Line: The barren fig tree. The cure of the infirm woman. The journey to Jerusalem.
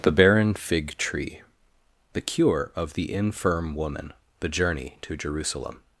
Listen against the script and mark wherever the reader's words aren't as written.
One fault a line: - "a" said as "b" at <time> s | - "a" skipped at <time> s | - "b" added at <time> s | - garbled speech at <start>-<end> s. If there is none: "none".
none